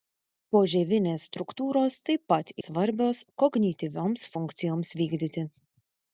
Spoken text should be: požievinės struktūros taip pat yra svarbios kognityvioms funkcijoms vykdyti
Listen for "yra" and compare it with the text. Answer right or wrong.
wrong